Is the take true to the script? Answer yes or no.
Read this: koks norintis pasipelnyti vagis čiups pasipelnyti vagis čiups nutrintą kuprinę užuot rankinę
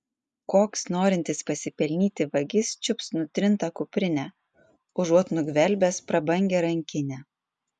no